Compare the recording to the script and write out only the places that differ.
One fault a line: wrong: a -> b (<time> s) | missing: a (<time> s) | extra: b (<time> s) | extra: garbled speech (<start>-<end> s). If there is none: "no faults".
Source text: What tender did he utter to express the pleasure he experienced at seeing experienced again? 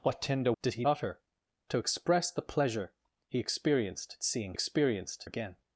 no faults